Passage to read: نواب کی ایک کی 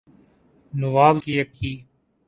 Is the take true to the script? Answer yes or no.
yes